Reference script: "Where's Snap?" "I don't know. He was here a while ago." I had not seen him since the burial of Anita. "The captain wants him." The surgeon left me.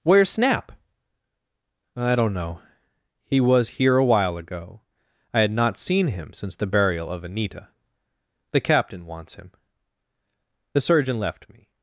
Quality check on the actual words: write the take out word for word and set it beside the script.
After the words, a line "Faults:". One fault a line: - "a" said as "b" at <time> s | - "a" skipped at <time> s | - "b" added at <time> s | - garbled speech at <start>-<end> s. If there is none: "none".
"Where's Snap?" "I don't know. He was here a while ago." I had not seen him since the burial of Anita. "The captain wants him." The surgeon left me.
Faults:
none